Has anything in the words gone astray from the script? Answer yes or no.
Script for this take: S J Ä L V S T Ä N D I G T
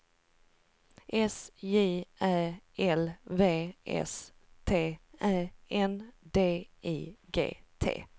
no